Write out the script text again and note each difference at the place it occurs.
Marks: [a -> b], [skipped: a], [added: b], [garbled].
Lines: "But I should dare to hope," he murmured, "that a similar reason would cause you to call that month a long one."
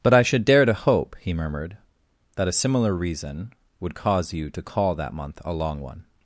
"But I should dare to hope," he murmured, "that a similar reason would cause you to call that month a long one."